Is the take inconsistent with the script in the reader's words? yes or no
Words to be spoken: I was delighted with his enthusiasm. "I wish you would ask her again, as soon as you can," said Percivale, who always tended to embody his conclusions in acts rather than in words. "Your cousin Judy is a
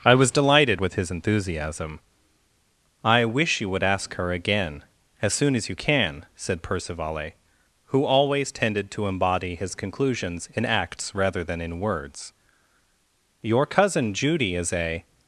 no